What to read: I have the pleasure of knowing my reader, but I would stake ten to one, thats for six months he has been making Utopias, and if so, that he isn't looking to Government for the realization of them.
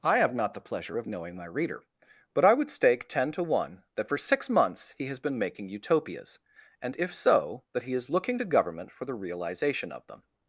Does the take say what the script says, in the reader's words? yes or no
no